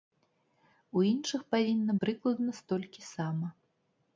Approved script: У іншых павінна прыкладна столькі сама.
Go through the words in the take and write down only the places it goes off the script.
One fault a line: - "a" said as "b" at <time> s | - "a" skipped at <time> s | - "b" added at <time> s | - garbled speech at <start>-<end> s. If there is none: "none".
none